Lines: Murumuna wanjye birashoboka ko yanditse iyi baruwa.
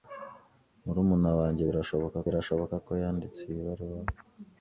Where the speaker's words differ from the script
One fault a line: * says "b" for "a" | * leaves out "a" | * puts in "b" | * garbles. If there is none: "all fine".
* puts in "birashoboka"